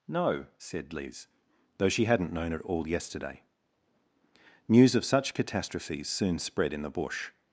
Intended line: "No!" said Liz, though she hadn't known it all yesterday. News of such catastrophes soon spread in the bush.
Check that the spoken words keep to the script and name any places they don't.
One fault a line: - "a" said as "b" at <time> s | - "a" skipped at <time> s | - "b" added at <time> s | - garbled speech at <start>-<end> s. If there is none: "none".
none